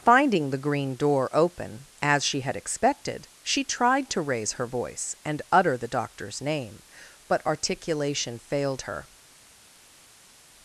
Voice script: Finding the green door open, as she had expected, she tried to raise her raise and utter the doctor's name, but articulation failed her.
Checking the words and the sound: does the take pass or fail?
fail